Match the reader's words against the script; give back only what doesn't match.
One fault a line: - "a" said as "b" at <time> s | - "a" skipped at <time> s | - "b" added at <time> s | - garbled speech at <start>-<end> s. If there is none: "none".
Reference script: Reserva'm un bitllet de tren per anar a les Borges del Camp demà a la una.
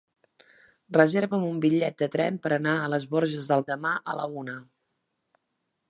- "Camp" skipped at 3.7 s